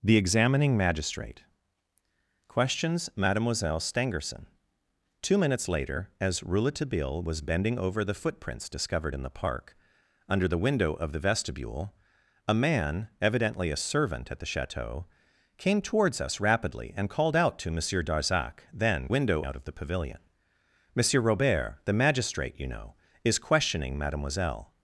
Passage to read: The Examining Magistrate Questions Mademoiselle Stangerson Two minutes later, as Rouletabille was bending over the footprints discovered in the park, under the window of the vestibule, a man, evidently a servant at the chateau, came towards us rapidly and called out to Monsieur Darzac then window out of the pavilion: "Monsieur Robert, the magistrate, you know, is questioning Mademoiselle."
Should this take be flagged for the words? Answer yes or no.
no